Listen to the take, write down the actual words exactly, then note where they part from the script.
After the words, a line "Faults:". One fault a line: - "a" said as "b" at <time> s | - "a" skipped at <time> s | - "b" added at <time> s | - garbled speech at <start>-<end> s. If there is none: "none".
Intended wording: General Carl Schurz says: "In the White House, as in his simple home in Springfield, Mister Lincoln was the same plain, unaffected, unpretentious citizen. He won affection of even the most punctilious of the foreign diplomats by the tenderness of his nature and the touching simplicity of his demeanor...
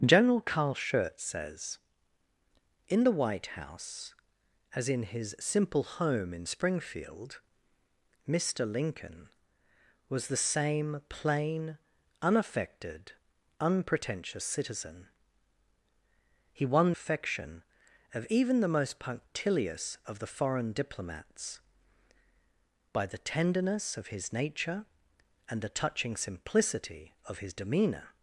General Carl Schurz says: "In the White House, as in his simple home in Springfield, Mister Lincoln was the same plain, unaffected, unpretentious citizen. He won affection of even the most punctilious of the foreign diplomats by the tenderness of his nature and the touching simplicity of his demeanor...
Faults:
none